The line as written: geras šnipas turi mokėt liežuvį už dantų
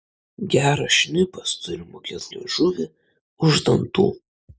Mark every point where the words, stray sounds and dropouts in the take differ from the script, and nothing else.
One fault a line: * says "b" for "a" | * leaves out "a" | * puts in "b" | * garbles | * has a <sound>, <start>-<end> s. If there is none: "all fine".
all fine